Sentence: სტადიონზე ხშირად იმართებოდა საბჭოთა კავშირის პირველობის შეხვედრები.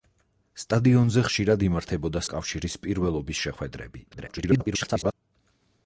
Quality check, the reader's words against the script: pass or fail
fail